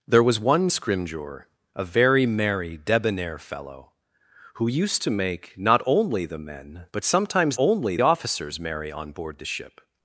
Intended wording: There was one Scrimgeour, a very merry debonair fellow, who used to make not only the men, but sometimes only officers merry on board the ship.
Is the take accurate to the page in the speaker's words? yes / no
yes